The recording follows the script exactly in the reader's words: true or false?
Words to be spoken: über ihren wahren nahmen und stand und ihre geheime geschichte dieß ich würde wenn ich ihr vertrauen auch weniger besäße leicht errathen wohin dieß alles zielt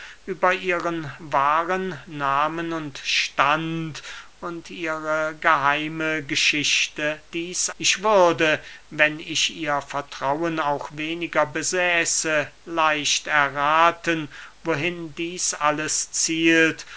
true